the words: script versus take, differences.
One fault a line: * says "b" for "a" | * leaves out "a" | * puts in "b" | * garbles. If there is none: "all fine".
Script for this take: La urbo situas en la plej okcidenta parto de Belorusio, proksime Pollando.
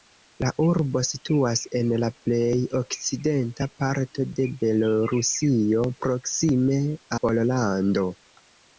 all fine